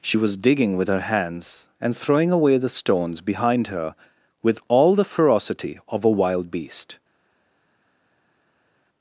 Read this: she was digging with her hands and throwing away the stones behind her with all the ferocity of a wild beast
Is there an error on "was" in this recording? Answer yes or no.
no